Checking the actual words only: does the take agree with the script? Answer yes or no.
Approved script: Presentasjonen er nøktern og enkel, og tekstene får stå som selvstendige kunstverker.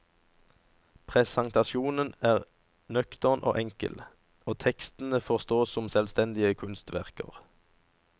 yes